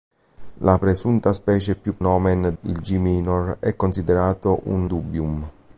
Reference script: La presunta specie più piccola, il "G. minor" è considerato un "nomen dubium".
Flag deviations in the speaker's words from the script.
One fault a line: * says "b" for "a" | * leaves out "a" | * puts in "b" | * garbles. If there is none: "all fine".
* says "nomen" for "piccola"
* leaves out "nomen"